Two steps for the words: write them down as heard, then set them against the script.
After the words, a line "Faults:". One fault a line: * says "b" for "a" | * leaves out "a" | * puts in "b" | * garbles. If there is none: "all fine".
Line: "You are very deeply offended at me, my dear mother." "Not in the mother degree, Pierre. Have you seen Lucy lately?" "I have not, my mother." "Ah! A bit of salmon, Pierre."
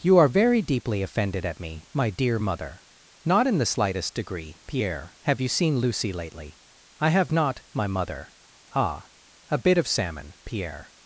"You are very deeply offended at me, my dear mother." "Not in the slightest degree, Pierre. Have you seen Lucy lately?" "I have not, my mother." "Ah! A bit of salmon, Pierre."
Faults:
* says "slightest" for "mother"